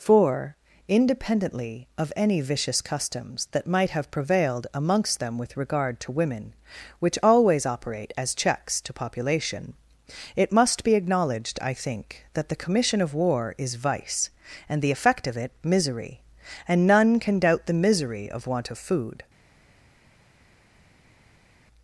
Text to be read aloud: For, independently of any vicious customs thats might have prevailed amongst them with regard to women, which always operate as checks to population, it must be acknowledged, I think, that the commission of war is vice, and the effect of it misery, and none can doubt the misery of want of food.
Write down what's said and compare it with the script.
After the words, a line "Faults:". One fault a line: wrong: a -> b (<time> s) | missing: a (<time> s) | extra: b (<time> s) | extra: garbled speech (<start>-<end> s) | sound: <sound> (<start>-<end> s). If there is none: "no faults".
For, independently of any vicious customs that might have prevailed amongst them with regard to women, which always operate as checks to population, it must be acknowledged, I think, that the commission of war is vice, and the effect of it misery, and none can doubt the misery of want of food.
Faults:
wrong: thats -> that (3.5 s)